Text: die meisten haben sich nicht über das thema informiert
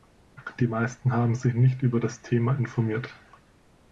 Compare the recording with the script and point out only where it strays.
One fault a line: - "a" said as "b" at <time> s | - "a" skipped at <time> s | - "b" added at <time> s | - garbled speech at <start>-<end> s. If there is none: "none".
none